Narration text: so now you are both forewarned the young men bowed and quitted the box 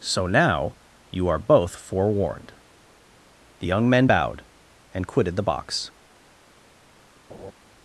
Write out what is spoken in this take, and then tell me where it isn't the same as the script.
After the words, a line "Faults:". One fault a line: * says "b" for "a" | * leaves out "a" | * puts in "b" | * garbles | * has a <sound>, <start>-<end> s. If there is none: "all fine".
so now you are both forewarned the young men bowed and quitted the box
Faults:
* has a laugh, 7.3-7.5 s